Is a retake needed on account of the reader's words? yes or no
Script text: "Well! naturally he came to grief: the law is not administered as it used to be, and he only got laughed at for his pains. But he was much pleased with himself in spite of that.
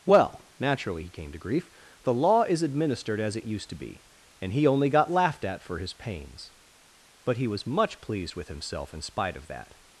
yes